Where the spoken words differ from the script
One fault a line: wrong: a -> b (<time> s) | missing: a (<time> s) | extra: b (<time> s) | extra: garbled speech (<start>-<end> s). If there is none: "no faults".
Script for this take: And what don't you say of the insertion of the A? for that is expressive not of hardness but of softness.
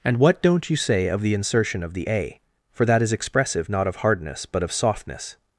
no faults